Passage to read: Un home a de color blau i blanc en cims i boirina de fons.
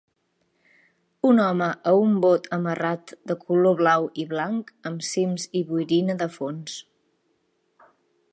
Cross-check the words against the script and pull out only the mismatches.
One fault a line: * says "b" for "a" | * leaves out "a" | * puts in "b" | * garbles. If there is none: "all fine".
* puts in "un bot amarrat"
* says "amb" for "en"